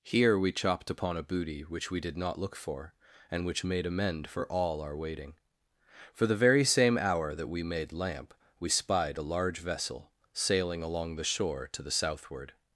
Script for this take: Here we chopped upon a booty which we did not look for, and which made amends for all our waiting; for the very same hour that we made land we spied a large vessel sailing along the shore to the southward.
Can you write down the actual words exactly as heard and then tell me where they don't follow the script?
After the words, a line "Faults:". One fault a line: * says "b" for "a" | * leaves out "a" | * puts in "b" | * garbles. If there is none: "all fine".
Here we chopped upon a booty which we did not look for, and which made amend for all our waiting; for the very same hour that we made lamp we spied a large vessel sailing along the shore to the southward.
Faults:
* says "amend" for "amends"
* says "lamp" for "land"